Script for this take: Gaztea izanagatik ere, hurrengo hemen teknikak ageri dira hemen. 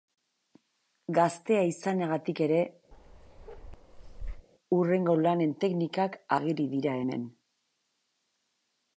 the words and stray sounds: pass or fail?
fail